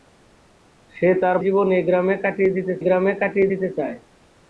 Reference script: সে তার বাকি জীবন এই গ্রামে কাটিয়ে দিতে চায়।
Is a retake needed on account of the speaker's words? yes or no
yes